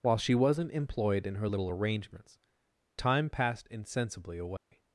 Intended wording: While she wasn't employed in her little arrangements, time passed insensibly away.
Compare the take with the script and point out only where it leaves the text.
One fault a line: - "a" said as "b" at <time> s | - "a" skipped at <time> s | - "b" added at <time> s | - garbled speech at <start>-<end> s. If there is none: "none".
none